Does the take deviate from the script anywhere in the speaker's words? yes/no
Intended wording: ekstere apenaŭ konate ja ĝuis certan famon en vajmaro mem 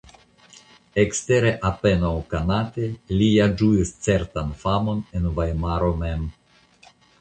yes